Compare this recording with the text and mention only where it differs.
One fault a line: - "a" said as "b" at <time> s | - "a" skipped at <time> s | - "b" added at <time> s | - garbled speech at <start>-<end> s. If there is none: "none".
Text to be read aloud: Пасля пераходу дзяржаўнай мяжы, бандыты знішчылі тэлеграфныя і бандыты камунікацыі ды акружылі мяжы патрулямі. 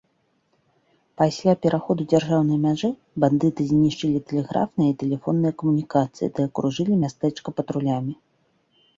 - "бандыты" said as "тэлефонныя" at 5.0 s
- "мяжы" said as "мястэчка" at 7.0 s